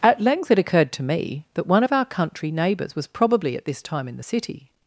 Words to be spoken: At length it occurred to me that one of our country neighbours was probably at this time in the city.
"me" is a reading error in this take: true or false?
false